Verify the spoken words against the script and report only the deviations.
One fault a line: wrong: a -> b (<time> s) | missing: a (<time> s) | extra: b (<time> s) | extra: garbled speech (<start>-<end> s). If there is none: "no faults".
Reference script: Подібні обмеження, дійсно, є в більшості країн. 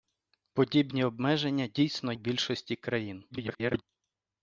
missing: є (2.1 s)
extra: garbled speech (3.3-3.8 s)